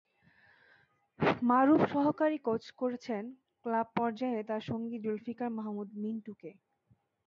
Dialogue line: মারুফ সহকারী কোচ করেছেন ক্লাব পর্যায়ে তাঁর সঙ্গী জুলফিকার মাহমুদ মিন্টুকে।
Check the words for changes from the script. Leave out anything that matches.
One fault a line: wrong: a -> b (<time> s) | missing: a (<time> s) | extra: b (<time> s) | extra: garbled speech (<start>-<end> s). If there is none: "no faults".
no faults